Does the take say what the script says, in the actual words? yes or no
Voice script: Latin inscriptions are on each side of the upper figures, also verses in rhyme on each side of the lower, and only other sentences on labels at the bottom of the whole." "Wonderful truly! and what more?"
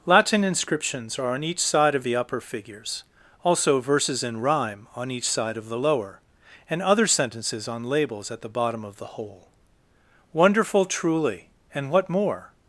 no